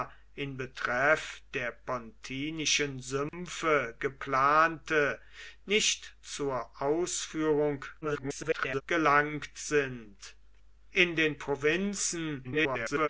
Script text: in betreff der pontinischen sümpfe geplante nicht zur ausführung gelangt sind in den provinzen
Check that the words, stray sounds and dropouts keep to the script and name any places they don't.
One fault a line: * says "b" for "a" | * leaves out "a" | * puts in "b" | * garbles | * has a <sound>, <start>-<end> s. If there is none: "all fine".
* has a dropout, 3.3-3.3 s
* garbles
* garbles